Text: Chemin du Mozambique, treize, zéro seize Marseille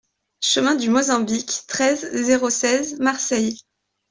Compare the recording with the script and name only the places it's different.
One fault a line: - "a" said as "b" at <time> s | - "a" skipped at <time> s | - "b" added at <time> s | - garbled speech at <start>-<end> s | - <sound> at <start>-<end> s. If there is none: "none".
none